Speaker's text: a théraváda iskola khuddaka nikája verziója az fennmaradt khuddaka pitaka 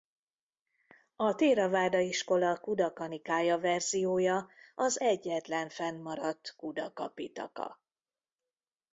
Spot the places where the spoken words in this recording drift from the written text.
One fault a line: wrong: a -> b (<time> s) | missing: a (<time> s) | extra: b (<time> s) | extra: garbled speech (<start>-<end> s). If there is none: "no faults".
extra: egyetlen (5.0 s)